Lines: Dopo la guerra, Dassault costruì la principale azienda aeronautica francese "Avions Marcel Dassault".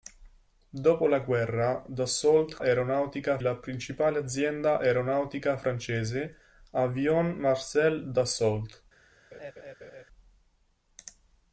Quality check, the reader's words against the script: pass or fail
fail